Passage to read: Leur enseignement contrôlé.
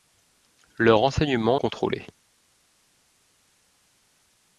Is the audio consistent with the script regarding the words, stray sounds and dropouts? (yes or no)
yes